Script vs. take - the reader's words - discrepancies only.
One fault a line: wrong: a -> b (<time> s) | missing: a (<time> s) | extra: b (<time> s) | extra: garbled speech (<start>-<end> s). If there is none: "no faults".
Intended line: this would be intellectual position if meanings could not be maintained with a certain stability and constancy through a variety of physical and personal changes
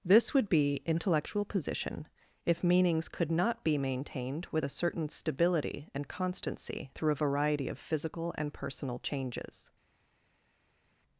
no faults